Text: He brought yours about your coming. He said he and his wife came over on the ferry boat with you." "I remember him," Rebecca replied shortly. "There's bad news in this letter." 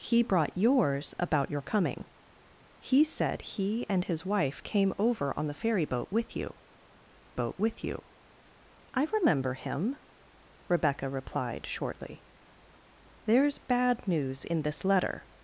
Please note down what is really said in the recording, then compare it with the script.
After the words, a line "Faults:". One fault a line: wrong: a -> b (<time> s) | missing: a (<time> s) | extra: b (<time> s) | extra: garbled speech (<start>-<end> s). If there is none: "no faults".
He brought yours about your coming. He said he and his wife came over on the ferry boat with you boat with you." "I remember him," Rebecca replied shortly. "There's bad news in this letter."
Faults:
extra: boat with you (7.3 s)